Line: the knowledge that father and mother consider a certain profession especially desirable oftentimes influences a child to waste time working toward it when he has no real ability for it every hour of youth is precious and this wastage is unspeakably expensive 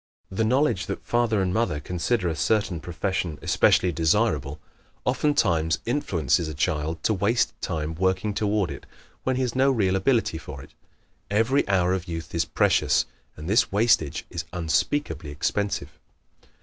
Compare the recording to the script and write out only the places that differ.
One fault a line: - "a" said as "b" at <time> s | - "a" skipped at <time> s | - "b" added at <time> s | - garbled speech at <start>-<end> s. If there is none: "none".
none